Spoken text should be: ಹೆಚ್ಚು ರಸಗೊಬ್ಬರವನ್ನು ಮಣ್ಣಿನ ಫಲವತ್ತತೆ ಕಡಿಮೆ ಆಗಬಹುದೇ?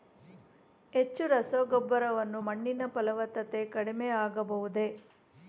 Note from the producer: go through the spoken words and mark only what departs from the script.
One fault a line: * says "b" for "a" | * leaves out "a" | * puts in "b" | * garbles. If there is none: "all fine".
all fine